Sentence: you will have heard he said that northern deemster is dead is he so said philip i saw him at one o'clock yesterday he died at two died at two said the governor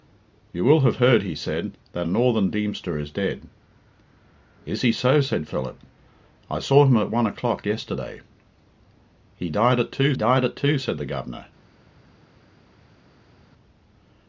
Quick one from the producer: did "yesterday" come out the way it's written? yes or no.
yes